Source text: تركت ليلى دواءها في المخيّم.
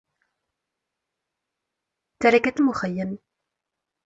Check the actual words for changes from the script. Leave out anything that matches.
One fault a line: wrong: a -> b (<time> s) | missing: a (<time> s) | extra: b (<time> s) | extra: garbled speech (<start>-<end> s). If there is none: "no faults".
missing: ليلى دواءها في (2.6 s)